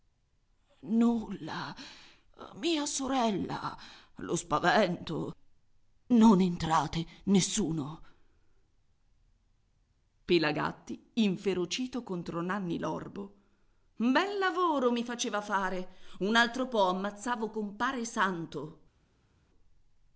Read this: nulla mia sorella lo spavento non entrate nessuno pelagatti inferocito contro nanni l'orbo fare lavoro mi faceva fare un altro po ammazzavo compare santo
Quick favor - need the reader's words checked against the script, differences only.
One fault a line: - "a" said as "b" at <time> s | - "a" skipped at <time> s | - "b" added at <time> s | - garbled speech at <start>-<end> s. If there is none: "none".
- "fare" said as "bel" at 13.9 s